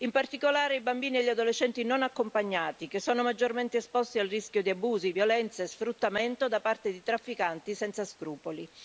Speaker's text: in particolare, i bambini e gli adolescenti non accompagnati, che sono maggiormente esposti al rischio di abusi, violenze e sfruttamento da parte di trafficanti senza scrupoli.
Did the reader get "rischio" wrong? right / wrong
right